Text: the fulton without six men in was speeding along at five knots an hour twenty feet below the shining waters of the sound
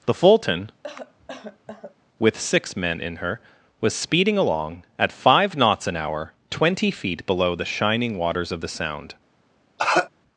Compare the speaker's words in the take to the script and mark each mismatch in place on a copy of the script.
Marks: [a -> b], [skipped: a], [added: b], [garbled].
the fulton [without -> with] six men in [added: her] was speeding along at five knots an hour twenty feet below the shining waters of the sound